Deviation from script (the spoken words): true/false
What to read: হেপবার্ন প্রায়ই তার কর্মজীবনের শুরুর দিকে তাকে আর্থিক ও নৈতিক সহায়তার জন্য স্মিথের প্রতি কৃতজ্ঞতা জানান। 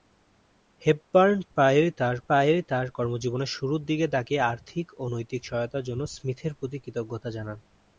true